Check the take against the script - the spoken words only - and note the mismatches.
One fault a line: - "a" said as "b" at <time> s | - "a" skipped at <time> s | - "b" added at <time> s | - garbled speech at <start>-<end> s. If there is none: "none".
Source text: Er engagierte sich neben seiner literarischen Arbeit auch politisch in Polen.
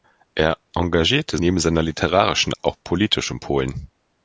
- "sich" skipped at 1.4 s
- "Arbeit" skipped at 2.5 s